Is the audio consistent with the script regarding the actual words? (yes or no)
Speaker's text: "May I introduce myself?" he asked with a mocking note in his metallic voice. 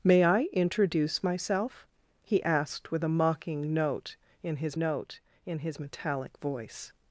no